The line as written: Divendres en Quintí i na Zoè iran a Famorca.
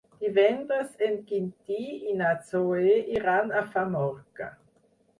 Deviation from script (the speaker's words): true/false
false